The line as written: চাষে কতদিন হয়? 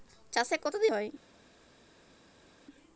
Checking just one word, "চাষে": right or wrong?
right